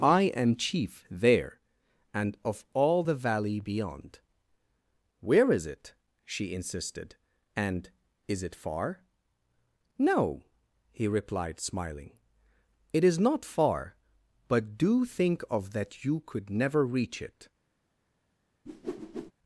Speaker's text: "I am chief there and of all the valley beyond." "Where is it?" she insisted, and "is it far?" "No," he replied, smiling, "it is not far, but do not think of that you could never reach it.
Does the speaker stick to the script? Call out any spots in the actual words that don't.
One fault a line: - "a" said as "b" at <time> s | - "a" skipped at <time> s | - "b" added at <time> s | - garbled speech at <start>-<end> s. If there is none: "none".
- "not" skipped at 15.0 s